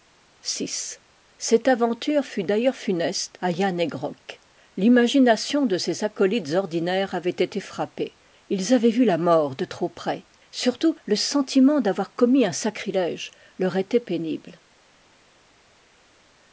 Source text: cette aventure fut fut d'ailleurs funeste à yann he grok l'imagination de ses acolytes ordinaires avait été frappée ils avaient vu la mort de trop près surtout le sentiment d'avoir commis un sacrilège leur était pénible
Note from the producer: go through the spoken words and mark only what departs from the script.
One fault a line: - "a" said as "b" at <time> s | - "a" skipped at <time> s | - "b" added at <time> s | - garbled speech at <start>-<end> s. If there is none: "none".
- "fut" skipped at 2.4 s